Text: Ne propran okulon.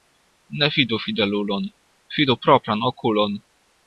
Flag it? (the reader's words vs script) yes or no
yes